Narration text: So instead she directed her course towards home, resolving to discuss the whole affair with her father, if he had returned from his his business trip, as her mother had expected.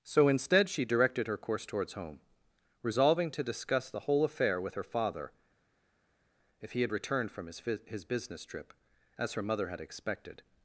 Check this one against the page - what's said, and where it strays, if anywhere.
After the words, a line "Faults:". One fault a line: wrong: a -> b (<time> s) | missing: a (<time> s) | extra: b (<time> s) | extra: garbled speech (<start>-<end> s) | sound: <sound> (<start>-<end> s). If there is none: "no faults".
So instead she directed her course towards home, resolving to discuss the whole affair with her father, if he had returned from his his business trip, as her mother had expected.
Faults:
no faults